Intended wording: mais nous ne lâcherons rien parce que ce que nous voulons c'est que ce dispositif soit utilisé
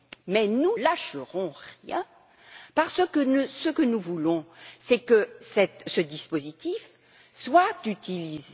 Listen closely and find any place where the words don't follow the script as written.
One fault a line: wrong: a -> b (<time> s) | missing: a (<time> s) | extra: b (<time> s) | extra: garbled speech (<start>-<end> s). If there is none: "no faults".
missing: ne (0.7 s)